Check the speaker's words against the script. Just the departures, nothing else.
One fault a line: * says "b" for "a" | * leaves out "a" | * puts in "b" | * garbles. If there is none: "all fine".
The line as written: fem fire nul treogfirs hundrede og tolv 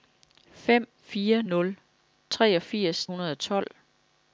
all fine